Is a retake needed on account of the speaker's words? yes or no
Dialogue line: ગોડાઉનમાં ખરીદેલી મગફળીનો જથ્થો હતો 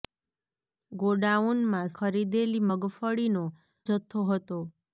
no